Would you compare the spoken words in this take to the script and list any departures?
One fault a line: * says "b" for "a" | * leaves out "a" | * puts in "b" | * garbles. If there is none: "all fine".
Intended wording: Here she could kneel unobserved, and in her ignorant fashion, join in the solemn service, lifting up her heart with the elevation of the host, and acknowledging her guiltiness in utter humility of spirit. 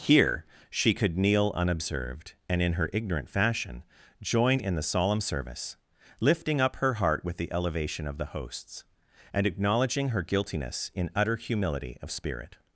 * says "hosts" for "host"